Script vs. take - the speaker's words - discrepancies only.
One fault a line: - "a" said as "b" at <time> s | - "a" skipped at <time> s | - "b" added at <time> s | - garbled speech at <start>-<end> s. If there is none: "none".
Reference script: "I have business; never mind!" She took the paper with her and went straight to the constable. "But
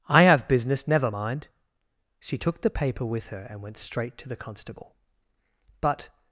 none